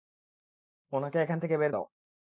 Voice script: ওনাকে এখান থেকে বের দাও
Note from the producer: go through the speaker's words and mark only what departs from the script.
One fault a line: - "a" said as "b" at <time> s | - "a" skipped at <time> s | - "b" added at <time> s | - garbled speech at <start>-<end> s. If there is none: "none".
none